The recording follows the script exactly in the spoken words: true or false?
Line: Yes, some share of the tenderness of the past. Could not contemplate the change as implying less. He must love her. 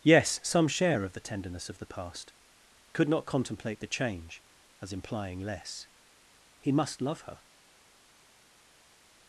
true